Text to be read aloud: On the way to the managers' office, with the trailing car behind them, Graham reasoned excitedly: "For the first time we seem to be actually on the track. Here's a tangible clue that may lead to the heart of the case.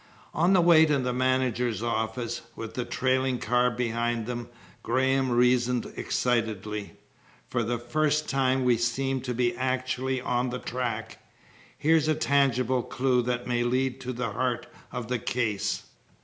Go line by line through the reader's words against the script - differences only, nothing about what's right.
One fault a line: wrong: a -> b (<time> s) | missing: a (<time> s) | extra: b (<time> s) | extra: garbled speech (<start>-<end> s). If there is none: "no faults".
no faults